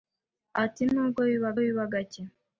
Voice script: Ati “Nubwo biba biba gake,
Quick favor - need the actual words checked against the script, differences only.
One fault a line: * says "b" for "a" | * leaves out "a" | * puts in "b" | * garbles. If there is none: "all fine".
all fine